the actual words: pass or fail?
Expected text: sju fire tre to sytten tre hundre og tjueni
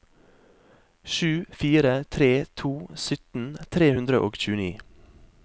pass